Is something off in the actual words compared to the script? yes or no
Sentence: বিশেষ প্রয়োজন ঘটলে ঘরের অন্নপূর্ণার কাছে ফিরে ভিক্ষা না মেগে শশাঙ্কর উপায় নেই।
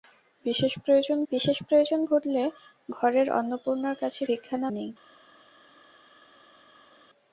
yes